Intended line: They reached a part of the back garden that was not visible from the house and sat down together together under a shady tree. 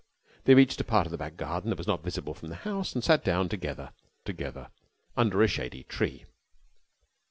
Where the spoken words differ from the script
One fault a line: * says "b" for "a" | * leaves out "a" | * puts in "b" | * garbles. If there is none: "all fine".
all fine